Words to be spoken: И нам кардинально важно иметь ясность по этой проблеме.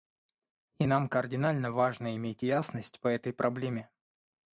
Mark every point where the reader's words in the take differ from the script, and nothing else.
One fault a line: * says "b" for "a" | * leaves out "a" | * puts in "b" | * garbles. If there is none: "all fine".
all fine